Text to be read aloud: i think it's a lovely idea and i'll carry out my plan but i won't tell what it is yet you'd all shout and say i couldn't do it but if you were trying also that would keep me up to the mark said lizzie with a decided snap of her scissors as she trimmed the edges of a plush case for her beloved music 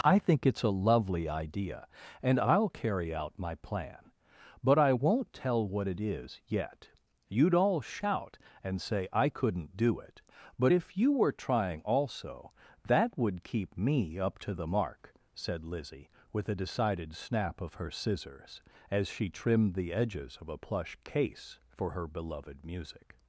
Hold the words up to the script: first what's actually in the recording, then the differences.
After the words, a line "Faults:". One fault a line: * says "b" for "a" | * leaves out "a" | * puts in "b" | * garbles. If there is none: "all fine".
i think it's a lovely idea and i'll carry out my plan but i won't tell what it is yet you'd all shout and say i couldn't do it but if you were trying also that would keep me up to the mark said lizzie with a decided snap of her scissors as she trimmed the edges of a plush case for her beloved music
Faults:
all fine